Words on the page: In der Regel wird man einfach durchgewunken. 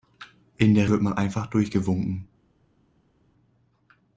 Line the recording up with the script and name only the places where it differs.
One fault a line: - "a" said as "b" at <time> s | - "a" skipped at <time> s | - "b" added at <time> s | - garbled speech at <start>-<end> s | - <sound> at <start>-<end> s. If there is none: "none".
- "Regel" skipped at 0.9 s